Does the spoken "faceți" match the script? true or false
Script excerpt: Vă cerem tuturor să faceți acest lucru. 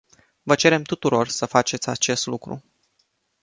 true